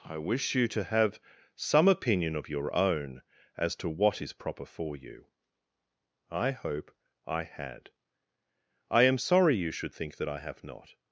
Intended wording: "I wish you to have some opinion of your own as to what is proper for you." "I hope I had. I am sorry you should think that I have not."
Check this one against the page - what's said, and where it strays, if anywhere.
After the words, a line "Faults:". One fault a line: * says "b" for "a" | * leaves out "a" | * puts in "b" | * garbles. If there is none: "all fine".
"I wish you to have some opinion of your own as to what is proper for you." "I hope I had. I am sorry you should think that I have not."
Faults:
all fine